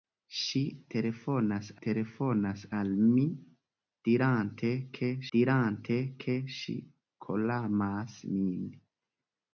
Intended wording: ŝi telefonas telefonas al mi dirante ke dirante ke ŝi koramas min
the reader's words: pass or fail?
pass